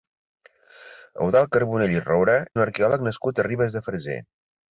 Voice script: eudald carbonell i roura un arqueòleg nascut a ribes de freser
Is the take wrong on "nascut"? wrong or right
right